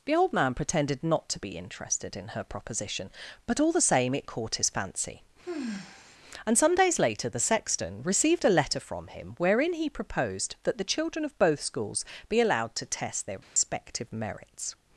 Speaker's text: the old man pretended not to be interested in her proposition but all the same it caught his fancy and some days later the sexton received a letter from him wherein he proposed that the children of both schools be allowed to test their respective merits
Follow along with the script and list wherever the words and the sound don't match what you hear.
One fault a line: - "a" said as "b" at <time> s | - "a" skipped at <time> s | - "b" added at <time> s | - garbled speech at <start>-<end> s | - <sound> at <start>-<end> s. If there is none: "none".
- sigh at 5.4-6.2 s
- dropout at 13.4-13.6 s